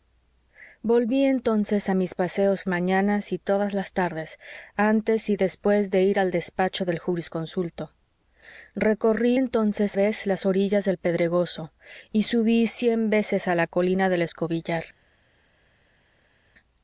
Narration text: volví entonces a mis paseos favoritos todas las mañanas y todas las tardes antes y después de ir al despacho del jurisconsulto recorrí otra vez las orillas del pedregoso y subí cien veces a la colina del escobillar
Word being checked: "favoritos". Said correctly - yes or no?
no